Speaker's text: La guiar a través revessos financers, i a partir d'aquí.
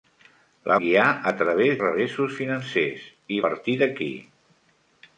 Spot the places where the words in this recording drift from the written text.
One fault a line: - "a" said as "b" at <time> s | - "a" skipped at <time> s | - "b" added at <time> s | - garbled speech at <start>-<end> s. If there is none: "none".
none